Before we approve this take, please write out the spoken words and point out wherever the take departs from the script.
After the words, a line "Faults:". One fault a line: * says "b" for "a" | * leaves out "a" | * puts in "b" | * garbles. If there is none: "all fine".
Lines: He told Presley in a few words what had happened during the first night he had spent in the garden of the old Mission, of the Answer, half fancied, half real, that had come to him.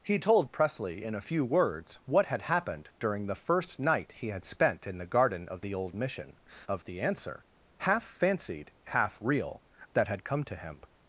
He told Presley in a few words what had happened during the first night he had spent in the garden of the old Mission, of the Answer, half fancied, half real, that had come to him.
Faults:
all fine